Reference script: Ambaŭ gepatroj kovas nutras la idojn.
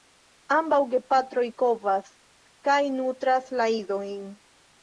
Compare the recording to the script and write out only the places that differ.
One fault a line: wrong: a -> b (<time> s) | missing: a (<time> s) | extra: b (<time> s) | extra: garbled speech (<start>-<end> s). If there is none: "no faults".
extra: kaj (2.7 s)